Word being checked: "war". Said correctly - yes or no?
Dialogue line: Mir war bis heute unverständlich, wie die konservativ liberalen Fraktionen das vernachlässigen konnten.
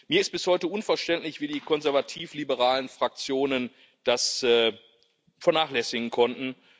no